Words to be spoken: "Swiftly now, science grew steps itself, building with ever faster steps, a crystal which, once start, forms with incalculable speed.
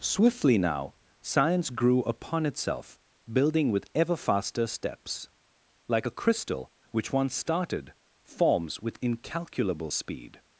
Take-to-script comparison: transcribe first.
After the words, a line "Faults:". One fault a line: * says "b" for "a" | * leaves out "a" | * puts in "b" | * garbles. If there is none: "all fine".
"Swiftly now, science grew upon itself, building with ever faster steps, like a crystal which, once started, forms with incalculable speed.
Faults:
* says "upon" for "steps"
* puts in "like"
* says "started" for "start"